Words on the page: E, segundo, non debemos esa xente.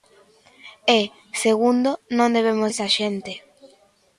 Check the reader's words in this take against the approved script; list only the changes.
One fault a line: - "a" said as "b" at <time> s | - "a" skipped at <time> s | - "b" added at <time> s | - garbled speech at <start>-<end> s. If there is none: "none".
none